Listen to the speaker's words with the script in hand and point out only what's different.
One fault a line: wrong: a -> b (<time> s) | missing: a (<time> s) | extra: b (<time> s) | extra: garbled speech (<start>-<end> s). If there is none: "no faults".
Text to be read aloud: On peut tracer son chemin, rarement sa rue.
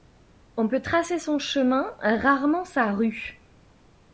no faults